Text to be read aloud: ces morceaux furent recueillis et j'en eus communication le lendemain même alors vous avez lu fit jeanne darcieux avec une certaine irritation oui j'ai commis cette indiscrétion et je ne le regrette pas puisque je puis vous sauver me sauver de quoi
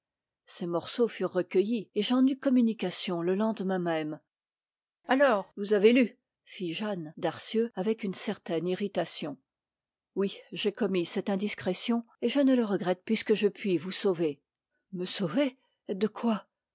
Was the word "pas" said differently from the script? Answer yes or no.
yes